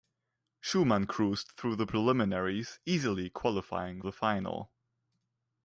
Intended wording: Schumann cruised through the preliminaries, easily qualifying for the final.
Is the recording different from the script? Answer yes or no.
yes